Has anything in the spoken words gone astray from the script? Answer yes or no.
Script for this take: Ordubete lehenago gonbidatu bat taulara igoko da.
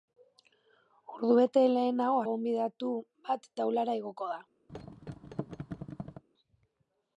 no